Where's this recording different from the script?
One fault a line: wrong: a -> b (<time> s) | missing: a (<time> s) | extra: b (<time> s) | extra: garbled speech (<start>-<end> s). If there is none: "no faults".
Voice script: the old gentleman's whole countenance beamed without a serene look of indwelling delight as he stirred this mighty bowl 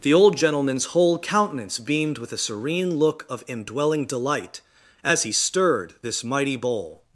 wrong: without -> with (2.2 s)